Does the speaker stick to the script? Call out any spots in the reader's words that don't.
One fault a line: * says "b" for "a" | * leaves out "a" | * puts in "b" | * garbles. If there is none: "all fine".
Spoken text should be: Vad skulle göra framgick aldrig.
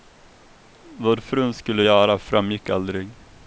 * puts in "frun"